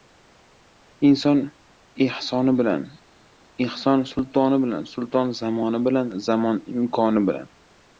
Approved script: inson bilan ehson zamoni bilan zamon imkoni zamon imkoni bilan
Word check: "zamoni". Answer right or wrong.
wrong